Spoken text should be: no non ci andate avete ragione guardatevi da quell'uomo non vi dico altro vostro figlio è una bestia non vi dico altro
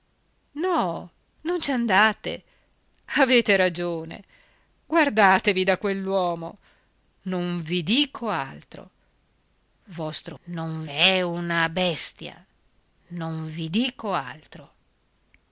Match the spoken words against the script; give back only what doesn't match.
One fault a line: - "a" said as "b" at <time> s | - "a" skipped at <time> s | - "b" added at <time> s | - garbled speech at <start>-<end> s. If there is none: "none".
- "figlio" said as "non" at 10.4 s